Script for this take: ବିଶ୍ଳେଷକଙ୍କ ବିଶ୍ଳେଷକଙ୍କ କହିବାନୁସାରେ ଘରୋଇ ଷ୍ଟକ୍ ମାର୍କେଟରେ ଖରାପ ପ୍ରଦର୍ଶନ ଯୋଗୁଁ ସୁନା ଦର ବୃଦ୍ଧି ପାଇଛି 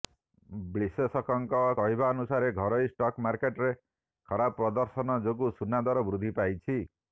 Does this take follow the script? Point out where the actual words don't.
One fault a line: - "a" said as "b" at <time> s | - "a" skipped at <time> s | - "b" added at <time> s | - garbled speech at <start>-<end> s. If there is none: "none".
- "ବିଶ୍ଳେଷକଙ୍କ" skipped at 1.6 s